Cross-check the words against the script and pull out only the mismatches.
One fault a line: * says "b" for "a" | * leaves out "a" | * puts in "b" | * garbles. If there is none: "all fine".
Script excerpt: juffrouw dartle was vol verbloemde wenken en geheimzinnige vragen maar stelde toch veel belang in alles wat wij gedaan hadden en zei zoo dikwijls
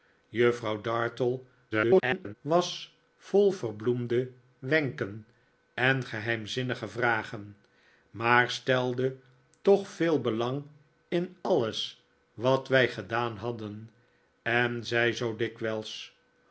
* garbles